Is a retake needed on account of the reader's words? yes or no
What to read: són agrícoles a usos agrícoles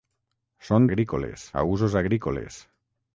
no